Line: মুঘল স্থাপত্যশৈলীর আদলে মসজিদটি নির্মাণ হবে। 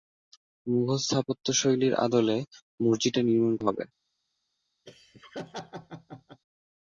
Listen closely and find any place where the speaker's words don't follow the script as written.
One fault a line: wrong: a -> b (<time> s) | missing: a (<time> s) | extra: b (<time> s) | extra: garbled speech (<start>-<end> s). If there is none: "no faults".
no faults